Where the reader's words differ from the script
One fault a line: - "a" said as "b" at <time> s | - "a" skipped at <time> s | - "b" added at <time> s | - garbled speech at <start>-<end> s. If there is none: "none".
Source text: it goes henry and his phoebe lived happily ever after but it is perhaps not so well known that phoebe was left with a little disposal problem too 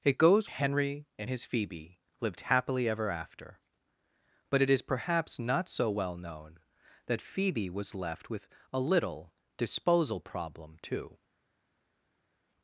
none